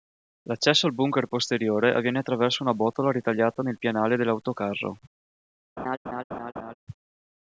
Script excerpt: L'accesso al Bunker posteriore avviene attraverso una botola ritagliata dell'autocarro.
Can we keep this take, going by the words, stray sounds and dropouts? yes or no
no